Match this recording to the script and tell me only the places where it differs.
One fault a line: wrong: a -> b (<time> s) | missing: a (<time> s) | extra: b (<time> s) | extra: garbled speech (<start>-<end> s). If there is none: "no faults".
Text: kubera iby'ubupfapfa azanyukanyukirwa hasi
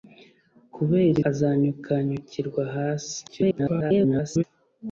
missing: iby'ubupfapfa (1.2 s)
extra: garbled speech (3.3-4.4 s)